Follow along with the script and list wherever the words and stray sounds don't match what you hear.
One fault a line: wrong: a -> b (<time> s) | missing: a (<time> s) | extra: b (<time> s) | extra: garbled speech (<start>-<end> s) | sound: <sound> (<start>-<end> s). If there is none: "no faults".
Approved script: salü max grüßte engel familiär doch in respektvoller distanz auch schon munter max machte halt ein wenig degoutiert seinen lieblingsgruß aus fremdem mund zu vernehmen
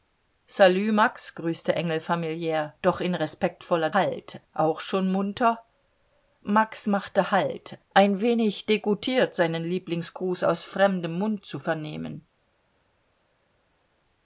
wrong: distanz -> halt (3.9 s)